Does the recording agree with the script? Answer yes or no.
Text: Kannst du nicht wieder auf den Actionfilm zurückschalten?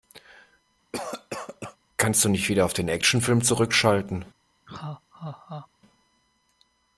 yes